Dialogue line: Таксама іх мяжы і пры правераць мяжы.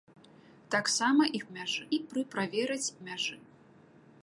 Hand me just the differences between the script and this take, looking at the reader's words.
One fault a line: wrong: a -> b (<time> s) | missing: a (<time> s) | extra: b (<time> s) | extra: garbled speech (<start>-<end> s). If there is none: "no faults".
no faults